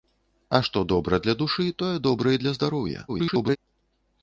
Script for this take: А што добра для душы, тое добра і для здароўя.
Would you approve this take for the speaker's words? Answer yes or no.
no